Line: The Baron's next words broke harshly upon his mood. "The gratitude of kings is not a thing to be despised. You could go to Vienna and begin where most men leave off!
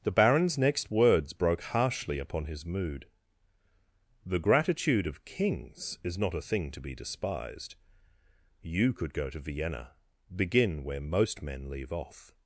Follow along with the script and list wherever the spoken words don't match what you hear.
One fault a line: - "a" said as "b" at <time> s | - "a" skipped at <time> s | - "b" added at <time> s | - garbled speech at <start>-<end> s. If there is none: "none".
- "and" skipped at 9.9 s